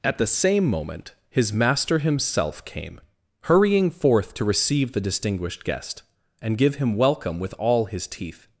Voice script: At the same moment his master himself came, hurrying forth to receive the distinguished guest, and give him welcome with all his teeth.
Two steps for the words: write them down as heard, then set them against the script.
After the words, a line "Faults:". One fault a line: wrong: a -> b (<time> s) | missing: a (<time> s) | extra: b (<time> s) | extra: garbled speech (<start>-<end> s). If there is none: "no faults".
At the same moment his master himself came, hurrying forth to receive the distinguished guest, and give him welcome with all his teeth.
Faults:
no faults